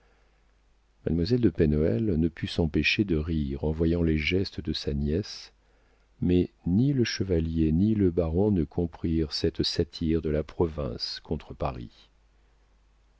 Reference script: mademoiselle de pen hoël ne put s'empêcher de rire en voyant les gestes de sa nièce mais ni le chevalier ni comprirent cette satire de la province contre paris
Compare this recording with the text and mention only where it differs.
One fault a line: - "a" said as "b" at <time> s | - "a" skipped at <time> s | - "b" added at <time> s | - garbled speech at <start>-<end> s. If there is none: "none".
- "le baron ne" added at 7.9 s